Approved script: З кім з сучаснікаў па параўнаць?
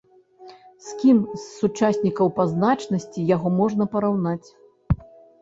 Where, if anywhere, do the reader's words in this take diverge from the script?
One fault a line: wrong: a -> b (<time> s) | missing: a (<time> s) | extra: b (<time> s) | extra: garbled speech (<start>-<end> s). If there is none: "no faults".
extra: значнасці яго можна (2.5 s)